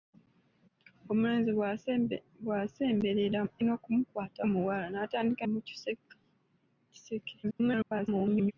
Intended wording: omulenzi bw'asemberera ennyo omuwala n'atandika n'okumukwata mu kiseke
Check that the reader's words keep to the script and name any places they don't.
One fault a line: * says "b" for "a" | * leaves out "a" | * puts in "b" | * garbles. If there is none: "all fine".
* says "n'okumukwata" for "ennyo"
* leaves out "n'okumukwata"
* garbles